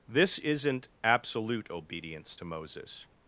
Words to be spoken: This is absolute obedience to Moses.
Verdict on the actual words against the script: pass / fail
fail